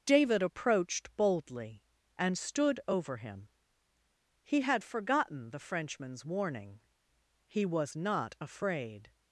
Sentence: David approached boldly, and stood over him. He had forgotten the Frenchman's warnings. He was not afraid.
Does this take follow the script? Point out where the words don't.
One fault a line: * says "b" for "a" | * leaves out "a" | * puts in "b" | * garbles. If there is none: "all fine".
* says "warning" for "warnings"